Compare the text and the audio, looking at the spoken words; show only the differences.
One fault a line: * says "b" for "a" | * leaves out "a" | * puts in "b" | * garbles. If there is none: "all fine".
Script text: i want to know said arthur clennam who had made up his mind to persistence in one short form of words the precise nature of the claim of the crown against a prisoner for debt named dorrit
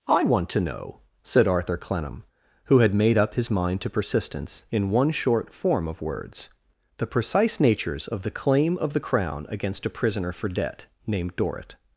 * says "natures" for "nature"